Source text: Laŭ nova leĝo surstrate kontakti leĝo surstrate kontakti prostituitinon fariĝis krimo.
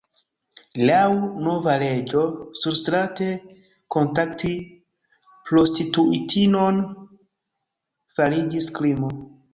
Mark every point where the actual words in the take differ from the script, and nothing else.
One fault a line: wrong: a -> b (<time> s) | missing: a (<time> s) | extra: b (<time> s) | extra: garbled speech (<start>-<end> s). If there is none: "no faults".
missing: leĝo surstrate kontakti (4.5 s)